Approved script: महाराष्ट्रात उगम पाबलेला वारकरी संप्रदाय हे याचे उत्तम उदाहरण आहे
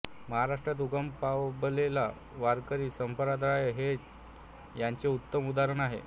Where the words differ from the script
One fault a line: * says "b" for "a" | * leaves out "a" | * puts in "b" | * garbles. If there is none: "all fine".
all fine